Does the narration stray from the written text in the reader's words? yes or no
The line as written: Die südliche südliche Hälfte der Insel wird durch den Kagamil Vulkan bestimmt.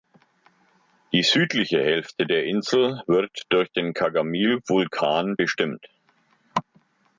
yes